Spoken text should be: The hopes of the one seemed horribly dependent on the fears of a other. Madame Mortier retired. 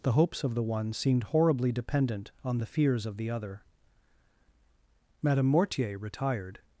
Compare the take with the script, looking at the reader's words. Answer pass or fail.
fail